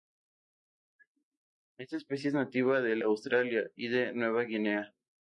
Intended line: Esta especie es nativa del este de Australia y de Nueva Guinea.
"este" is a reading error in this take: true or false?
true